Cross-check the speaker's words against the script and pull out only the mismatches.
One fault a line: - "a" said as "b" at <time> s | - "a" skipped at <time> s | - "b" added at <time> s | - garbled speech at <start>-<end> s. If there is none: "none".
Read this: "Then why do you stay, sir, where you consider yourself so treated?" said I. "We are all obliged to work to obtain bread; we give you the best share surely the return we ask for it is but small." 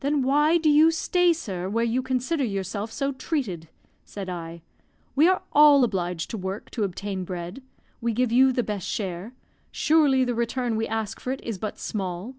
none